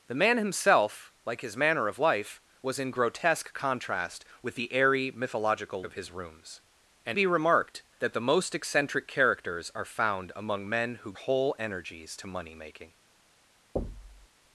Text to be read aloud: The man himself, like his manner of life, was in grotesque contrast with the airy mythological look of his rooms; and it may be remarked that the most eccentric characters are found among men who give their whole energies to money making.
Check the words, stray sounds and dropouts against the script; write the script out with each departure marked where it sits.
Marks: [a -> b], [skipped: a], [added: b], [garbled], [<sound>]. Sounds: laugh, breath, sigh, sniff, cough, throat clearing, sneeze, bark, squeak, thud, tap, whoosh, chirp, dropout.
The man himself, like his manner of life, was in grotesque contrast with the airy mythological [skipped: look] of his rooms; and [skipped: it may] be remarked that the most eccentric characters are found among men who [skipped: give their] whole energies to money making. [thud]